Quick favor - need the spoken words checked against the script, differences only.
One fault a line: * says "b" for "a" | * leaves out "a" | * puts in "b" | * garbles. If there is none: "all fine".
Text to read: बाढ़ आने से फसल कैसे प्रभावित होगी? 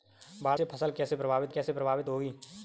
* leaves out "आने"
* puts in "कैसे प्रभावित"